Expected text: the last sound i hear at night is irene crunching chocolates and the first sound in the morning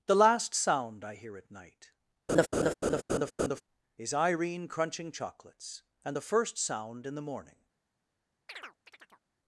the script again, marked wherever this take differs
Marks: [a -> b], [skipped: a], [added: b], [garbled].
the last sound i hear at night is irene crunching chocolates and the first sound in the morning